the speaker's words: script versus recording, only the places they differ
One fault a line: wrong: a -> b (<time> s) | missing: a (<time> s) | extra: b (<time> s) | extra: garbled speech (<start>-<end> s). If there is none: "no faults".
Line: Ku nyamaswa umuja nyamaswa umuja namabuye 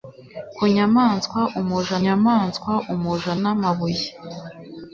no faults